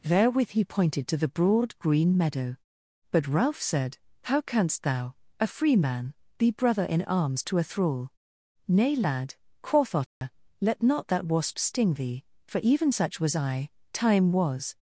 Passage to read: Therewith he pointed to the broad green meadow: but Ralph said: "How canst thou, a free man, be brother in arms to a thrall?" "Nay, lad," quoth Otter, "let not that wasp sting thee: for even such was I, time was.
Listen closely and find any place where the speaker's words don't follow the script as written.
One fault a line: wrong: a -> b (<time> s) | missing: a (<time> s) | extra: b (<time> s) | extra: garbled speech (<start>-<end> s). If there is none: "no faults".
no faults